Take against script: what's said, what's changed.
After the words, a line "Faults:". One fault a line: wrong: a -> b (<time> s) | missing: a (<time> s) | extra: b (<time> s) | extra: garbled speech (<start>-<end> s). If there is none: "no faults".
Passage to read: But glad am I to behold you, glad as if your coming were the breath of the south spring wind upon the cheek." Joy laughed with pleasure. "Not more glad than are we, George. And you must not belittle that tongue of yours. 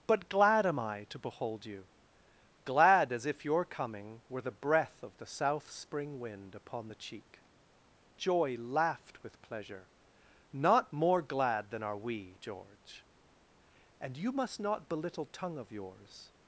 But glad am I to behold you, glad as if your coming were the breath of the south spring wind upon the cheek." Joy laughed with pleasure. "Not more glad than are we, George. And you must not belittle tongue of yours.
Faults:
missing: that (15.2 s)